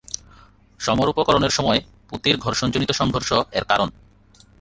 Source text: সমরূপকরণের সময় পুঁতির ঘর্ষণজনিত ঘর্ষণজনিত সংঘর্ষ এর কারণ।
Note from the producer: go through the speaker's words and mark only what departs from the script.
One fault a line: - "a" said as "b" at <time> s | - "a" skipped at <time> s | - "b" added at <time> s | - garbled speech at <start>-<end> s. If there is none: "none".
- "ঘর্ষণজনিত" skipped at 2.9 s